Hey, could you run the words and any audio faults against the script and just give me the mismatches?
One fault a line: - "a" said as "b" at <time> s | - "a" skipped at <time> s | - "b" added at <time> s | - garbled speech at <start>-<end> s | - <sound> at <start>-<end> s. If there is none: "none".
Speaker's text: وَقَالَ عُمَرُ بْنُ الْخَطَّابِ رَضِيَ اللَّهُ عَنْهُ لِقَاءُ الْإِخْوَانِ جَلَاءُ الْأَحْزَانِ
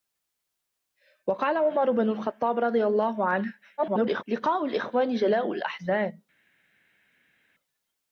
- garbled speech at 3.8-4.2 s